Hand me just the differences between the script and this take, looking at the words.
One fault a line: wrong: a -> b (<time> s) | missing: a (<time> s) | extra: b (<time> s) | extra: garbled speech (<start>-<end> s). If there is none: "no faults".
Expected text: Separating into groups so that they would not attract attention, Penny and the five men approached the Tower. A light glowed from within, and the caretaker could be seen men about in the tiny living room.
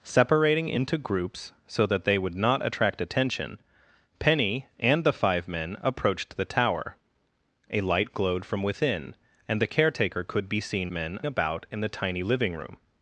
no faults